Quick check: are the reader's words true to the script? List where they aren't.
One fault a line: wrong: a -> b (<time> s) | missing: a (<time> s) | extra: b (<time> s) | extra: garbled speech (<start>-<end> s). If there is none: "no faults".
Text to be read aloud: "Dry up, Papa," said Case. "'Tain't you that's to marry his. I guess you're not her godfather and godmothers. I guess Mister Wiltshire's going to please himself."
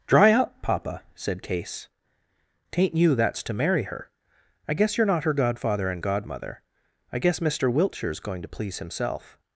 wrong: his -> her (3.8 s)
wrong: godmothers -> godmother (6.0 s)